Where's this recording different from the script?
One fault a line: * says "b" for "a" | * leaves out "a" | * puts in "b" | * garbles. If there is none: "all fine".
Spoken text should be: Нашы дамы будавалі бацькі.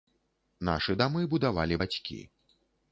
all fine